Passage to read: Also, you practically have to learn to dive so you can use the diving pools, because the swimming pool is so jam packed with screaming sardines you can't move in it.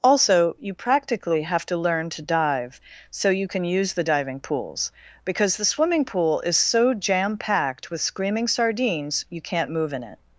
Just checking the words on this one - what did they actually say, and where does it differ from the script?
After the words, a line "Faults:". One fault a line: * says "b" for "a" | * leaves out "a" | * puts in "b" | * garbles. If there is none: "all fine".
Also, you practically have to learn to dive so you can use the diving pools, because the swimming pool is so jam packed with screaming sardines you can't move in it.
Faults:
all fine